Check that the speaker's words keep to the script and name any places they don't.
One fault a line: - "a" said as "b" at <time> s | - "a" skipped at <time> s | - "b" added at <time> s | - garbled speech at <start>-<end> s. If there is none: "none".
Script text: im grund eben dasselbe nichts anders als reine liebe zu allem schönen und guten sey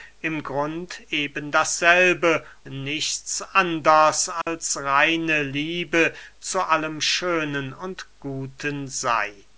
none